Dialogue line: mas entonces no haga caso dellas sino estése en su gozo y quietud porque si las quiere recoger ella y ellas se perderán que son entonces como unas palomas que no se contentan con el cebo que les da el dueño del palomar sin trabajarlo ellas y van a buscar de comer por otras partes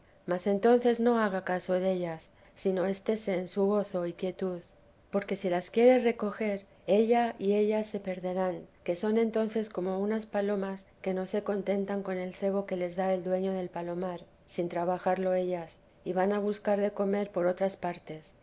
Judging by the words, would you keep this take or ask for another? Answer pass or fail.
pass